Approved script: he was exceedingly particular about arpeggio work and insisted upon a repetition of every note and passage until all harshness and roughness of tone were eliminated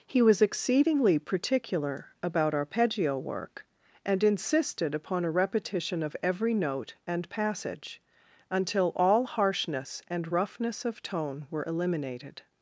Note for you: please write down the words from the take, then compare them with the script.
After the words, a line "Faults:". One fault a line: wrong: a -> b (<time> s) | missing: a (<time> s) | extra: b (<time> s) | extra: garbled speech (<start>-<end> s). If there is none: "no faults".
he was exceedingly particular about arpeggio work and insisted upon a repetition of every note and passage until all harshness and roughness of tone were eliminated
Faults:
no faults